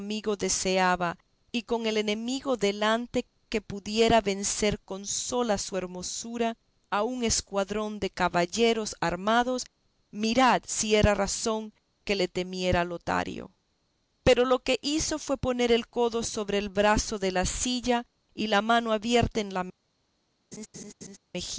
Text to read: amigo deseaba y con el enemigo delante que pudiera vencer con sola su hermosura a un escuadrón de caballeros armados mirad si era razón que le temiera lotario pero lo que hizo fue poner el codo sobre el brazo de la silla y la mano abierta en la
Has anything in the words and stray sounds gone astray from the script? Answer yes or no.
yes